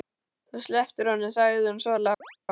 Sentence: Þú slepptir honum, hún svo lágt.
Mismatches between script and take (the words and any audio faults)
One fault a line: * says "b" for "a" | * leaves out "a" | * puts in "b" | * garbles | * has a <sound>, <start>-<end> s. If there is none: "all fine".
* puts in "sagði"
* has a chirp, 2.2-2.4 s